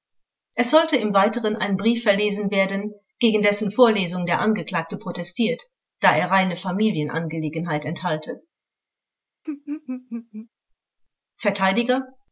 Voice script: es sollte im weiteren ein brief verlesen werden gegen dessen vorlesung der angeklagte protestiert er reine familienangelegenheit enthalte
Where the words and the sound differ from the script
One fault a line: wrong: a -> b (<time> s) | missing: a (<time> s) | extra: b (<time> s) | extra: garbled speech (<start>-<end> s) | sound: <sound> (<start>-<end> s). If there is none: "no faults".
extra: da (6.0 s)
sound: laugh (9.4-10.5 s)